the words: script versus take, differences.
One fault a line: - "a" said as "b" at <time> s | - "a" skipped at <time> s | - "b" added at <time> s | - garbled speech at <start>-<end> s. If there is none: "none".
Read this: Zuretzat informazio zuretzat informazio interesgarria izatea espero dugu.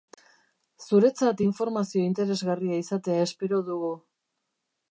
- "zuretzat informazio" skipped at 2.1 s